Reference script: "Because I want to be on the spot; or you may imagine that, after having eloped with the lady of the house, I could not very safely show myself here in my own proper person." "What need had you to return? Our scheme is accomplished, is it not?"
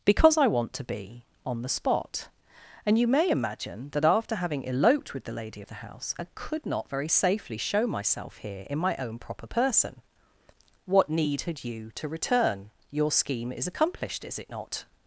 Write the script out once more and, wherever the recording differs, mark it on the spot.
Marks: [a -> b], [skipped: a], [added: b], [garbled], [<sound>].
"Because I want to be on the spot; [or -> and] you may imagine that, after having eloped with the lady of the house, I could not very safely show myself here in my own proper person." "What need had you to return? [Our -> Your] scheme is accomplished, is it not?"